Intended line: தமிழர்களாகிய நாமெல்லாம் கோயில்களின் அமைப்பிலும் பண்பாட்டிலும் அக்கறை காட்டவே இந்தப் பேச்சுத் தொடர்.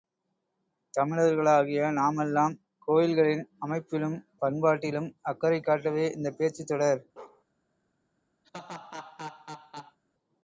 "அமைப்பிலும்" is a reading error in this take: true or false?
false